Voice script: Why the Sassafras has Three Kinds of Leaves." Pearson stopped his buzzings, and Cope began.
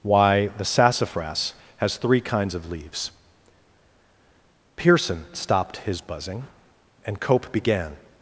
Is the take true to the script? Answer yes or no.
no